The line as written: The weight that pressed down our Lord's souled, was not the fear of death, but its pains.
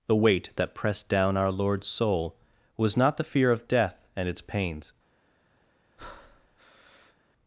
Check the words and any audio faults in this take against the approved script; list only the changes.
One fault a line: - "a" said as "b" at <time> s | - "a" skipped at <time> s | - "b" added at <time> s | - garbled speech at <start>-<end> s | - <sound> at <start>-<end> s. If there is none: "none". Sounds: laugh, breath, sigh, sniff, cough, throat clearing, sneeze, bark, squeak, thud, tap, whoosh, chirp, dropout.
- "souled" said as "soul" at 1.8 s
- "but" said as "and" at 4.1 s
- breath at 6.0-7.1 s